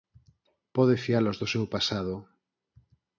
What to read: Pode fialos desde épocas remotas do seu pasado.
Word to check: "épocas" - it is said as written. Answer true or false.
false